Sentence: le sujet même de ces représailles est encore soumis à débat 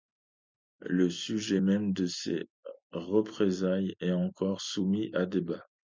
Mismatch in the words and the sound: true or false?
false